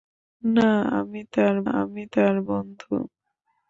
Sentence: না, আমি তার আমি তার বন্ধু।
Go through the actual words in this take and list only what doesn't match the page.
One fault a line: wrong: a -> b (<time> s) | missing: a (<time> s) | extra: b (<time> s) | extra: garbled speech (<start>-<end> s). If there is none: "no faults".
no faults